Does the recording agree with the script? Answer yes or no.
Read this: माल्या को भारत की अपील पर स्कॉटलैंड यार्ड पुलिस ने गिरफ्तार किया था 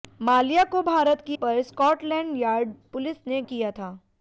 no